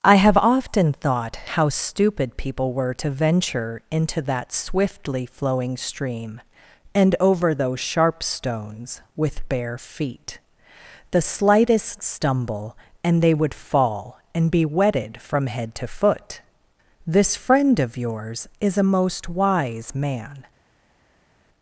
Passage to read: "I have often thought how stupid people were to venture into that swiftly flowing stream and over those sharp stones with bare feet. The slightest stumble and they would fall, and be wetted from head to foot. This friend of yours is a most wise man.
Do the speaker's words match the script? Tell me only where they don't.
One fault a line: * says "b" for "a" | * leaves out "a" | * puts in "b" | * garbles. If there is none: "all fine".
all fine